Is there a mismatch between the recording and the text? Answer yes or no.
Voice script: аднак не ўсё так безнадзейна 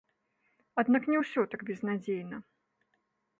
no